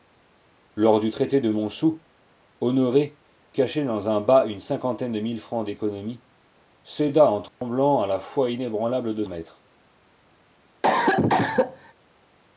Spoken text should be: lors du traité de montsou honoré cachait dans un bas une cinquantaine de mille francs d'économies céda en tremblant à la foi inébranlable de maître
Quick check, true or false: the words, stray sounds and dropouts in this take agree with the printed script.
false